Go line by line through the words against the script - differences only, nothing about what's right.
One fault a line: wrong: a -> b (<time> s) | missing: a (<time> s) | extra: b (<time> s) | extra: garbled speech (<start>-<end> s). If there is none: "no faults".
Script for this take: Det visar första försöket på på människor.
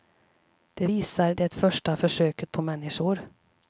extra: det (1.3 s)
missing: på (2.6 s)